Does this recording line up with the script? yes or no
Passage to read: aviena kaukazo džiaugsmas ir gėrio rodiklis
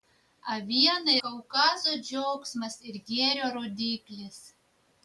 yes